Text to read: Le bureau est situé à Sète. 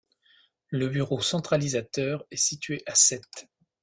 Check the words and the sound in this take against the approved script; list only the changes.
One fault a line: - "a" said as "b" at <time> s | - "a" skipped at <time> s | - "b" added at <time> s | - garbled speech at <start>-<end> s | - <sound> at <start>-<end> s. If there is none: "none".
- "centralisateur" added at 1.2 s